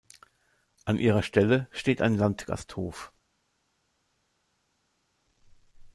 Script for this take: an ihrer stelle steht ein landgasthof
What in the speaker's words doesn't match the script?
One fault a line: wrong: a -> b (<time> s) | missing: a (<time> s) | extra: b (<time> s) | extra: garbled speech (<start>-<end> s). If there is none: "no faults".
no faults